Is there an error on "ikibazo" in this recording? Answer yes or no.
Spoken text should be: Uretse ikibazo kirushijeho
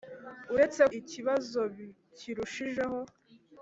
no